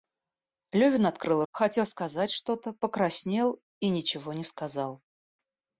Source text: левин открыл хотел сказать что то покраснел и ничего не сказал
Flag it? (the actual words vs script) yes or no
no